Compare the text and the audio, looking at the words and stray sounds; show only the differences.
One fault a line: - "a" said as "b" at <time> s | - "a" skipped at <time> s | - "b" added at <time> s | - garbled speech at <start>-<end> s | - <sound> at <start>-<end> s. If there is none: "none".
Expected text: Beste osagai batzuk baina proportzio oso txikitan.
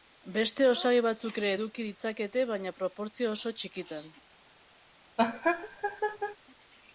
- "ere eduki ditzakete" added at 1.4 s
- laugh at 5.2-6.4 s